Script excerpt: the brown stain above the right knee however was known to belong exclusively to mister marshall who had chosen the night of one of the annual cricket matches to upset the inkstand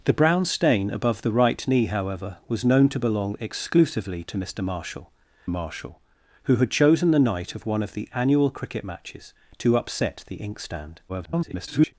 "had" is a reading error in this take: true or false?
false